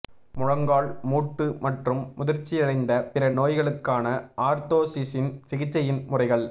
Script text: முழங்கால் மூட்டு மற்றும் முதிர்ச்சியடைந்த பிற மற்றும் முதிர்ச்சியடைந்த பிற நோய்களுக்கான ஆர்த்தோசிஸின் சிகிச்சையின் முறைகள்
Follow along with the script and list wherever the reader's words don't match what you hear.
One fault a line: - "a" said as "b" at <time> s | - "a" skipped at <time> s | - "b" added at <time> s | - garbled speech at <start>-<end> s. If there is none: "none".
- "மற்றும் முதிர்ச்சியடைந்த பிற" skipped at 3.3 s